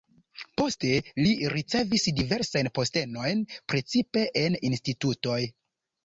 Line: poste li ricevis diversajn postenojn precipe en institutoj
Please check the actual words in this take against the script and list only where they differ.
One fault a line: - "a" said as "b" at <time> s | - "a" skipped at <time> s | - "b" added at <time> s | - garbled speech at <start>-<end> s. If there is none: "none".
none